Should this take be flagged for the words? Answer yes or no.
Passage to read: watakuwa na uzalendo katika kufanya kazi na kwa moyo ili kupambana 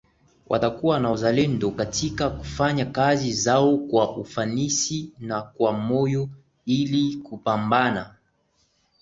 yes